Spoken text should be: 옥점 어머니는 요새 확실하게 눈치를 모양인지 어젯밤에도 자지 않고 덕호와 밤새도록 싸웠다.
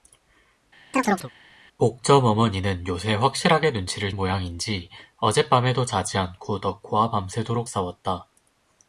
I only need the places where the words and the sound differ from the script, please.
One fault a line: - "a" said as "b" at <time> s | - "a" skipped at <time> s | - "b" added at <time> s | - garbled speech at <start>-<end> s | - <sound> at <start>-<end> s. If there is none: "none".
- chirp at 0.9-1.3 s